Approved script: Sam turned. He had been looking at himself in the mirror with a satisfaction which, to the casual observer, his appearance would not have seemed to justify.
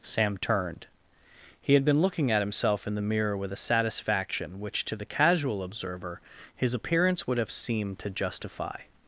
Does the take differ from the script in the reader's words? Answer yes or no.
yes